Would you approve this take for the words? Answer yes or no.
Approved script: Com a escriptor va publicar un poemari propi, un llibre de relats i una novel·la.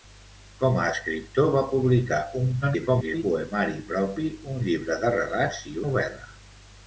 no